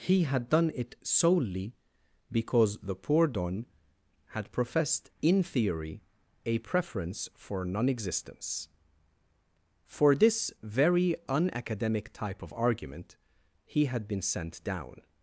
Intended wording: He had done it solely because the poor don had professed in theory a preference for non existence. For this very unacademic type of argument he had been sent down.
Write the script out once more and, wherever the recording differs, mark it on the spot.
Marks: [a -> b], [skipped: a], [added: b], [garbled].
He had done it solely because the poor don had professed in theory a preference for non existence. For this very unacademic type of argument he had been sent down.